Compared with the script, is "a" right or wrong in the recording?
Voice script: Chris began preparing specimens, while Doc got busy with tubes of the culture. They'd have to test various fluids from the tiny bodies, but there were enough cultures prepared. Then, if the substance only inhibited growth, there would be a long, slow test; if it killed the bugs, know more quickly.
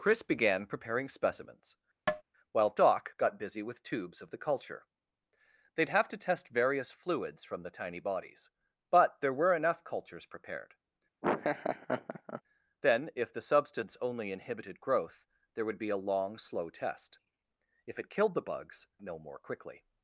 right